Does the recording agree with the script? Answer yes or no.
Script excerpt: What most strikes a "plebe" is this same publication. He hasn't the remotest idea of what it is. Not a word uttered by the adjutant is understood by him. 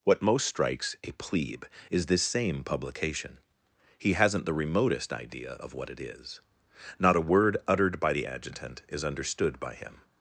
yes